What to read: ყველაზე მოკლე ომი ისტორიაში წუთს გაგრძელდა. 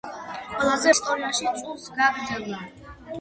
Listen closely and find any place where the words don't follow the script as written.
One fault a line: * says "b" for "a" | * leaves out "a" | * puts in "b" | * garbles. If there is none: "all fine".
* leaves out "მოკლე ომი"